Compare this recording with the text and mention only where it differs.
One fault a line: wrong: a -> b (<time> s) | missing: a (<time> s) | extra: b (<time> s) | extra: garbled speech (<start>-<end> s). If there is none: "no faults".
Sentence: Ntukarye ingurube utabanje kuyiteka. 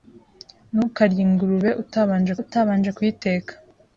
extra: utabanje (2.4 s)